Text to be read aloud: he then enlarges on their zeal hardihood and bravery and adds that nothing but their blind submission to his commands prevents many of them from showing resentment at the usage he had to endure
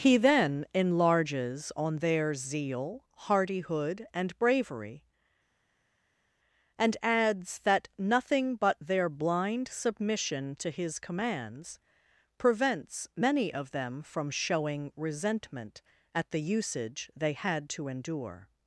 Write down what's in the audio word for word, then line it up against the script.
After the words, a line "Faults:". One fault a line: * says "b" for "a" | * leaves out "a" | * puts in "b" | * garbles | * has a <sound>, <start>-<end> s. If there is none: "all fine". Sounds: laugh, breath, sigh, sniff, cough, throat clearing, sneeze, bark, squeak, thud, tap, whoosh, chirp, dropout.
he then enlarges on their zeal hardihood and bravery and adds that nothing but their blind submission to his commands prevents many of them from showing resentment at the usage they had to endure
Faults:
* says "they" for "he"